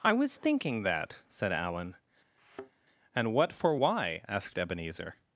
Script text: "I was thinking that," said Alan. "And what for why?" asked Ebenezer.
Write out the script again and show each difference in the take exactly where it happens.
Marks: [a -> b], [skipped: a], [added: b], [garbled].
"I was thinking that," said Alan. "And what for why?" asked Ebenezer.